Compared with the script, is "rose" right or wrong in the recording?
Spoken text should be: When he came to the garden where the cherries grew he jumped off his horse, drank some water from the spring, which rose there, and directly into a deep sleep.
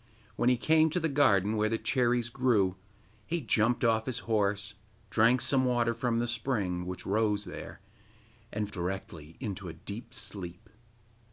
right